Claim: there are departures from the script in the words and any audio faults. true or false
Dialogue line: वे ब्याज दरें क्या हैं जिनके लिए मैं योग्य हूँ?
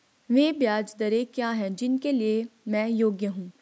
false